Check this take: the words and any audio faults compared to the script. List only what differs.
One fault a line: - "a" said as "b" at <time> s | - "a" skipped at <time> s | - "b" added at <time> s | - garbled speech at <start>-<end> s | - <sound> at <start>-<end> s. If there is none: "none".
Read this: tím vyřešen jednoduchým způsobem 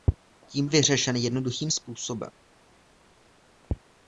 none